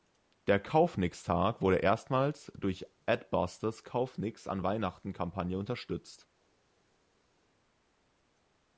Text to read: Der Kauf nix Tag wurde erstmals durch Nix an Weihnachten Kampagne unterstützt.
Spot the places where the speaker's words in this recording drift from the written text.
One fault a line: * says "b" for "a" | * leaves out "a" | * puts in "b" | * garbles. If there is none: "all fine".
* puts in "Adbusters Kauf"